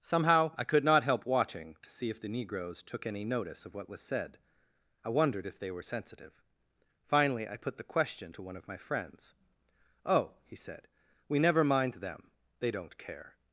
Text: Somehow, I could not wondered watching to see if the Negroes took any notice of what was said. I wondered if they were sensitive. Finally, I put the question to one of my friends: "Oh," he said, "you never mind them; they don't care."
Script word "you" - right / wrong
wrong